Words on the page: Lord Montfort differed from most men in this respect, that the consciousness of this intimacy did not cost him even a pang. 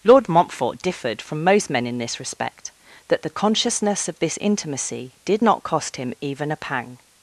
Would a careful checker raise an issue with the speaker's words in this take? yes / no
no